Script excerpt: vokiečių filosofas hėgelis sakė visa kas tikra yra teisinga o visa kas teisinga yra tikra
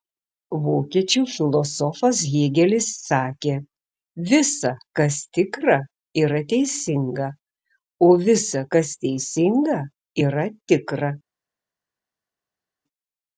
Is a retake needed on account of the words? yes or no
no